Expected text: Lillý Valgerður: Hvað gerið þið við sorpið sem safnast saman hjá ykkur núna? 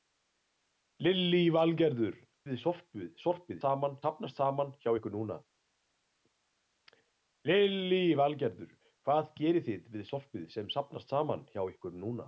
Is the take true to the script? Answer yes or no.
no